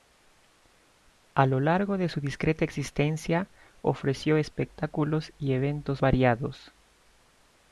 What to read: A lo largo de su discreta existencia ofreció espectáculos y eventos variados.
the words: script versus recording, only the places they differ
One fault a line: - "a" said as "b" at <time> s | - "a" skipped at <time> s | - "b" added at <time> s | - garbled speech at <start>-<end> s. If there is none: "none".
none